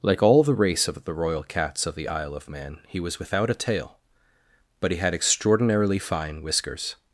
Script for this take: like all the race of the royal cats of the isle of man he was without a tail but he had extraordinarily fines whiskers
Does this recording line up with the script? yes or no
no